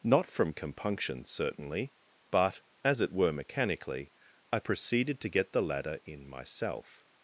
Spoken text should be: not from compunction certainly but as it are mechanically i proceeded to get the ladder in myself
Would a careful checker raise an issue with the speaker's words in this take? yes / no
yes